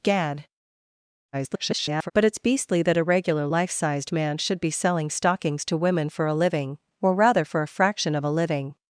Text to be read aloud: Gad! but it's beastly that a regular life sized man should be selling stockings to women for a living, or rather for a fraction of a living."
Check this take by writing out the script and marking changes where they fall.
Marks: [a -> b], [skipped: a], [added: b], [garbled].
Gad! [garbled] but it's beastly that a regular life sized man should be selling stockings to women for a living, or rather for a fraction of a living."